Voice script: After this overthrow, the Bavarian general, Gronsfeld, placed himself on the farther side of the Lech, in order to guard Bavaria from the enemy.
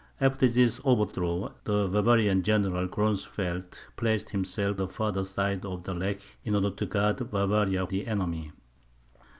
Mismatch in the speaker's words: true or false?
true